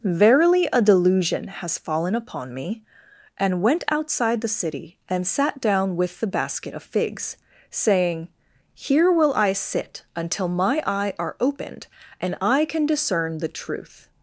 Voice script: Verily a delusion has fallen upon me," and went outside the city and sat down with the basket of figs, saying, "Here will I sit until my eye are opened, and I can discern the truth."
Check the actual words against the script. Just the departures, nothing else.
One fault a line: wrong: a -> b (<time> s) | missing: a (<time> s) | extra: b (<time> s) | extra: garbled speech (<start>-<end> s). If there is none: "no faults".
no faults